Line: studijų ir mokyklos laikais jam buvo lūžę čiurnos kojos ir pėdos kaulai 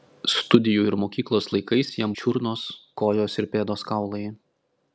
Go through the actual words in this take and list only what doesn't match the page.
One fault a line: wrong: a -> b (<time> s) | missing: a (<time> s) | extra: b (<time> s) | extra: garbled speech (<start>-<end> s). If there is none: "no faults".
missing: buvo lūžę (2.2 s)